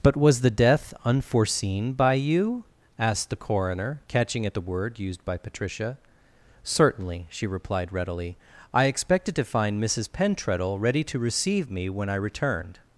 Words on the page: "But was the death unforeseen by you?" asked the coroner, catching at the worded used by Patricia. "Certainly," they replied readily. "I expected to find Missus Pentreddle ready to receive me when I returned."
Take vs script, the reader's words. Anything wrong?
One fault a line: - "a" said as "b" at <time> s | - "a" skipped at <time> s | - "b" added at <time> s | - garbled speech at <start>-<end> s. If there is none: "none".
- "worded" said as "word" at 4.6 s
- "they" said as "she" at 7.3 s